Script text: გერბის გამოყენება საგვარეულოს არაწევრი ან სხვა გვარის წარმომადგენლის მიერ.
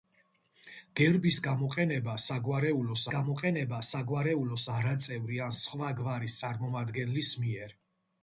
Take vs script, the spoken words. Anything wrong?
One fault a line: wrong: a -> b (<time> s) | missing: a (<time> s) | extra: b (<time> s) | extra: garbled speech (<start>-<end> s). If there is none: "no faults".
extra: გამოყენება საგვარეულოს (3.1 s)